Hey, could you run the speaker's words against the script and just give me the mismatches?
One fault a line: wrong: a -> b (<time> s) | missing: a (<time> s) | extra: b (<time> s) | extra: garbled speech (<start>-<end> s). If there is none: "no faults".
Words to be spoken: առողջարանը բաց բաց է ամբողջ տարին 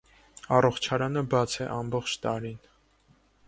missing: բաց (1.6 s)